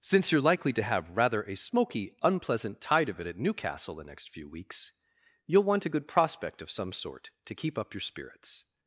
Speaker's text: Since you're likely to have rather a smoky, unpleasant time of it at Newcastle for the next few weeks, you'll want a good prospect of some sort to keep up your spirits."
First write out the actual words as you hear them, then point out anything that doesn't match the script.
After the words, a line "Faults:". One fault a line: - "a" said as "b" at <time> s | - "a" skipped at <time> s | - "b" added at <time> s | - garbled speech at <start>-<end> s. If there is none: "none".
Since you're likely to have rather a smoky, unpleasant tide of it at Newcastle the next few weeks, you'll want a good prospect of some sort to keep up your spirits."
Faults:
- "time" said as "tide" at 2.8 s
- "for" skipped at 3.9 s